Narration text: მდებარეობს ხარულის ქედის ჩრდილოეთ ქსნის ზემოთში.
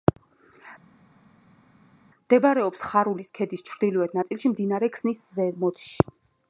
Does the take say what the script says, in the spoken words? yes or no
no